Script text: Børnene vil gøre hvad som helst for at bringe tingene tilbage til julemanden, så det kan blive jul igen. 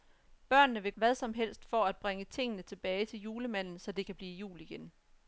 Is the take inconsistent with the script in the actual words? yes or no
yes